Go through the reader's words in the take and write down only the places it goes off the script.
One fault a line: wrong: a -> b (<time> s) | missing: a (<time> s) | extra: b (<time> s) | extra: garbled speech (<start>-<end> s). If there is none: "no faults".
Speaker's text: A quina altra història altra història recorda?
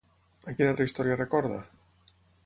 missing: altra història (1.2 s)